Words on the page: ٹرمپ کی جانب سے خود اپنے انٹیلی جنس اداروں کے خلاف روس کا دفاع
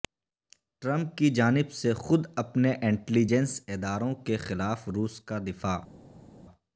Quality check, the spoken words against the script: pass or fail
pass